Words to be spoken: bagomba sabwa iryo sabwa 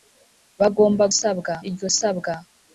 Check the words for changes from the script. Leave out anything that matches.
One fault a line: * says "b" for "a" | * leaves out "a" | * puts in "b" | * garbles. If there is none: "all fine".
all fine